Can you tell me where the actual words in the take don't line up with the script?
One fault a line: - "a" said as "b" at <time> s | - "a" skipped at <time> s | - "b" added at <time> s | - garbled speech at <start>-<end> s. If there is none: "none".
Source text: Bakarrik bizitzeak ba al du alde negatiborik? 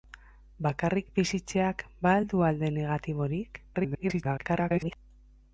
- garbled speech at 3.7-5.0 s